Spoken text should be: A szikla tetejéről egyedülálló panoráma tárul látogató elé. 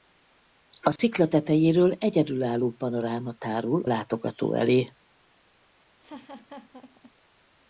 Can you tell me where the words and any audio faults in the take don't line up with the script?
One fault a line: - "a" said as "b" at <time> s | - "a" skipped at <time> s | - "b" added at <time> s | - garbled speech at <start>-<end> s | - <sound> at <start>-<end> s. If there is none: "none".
- dropout at 1.0-1.0 s
- laugh at 6.0-7.1 s